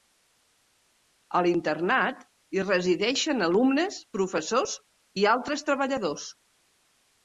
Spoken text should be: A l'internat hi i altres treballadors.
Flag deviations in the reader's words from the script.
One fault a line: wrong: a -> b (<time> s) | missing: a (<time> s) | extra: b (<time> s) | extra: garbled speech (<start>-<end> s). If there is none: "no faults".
extra: resideixen alumnes professors (2.6 s)